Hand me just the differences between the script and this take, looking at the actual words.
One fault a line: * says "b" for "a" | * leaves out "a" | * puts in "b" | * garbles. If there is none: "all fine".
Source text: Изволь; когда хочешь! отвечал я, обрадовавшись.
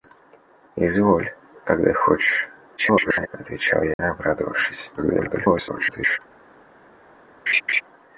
* garbles
* garbles